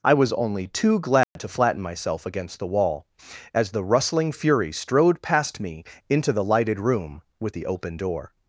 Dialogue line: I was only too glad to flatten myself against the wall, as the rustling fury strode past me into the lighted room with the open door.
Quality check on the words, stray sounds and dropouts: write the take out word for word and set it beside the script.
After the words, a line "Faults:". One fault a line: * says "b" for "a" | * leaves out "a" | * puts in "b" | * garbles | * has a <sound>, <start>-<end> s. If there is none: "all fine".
I was only too glad to flatten myself against the wall, as the rustling fury strode past me into the lighted room with the open door.
Faults:
* has a dropout, 1.2-1.4 s